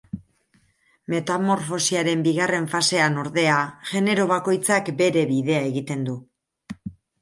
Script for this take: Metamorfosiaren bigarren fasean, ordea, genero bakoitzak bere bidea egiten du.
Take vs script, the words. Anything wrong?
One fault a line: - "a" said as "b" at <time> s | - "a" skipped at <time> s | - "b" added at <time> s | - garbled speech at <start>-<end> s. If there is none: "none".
none